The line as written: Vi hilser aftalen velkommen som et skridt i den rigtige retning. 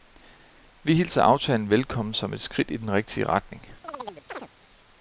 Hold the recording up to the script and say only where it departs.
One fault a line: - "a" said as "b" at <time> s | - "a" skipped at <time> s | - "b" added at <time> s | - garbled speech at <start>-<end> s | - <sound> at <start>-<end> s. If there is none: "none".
- chirp at 3.8-4.5 s